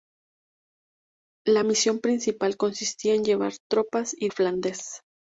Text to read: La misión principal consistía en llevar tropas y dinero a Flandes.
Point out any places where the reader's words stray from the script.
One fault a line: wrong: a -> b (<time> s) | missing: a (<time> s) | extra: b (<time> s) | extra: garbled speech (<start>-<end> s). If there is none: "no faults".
missing: dinero (4.3 s)